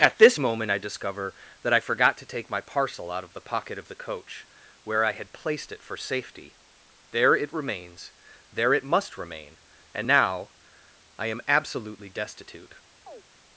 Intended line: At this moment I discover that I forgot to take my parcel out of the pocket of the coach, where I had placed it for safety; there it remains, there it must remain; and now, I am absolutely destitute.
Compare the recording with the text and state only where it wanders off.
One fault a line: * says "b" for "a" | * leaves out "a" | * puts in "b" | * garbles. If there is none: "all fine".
all fine